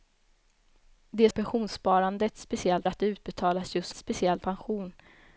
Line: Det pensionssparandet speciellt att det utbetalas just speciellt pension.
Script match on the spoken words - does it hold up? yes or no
yes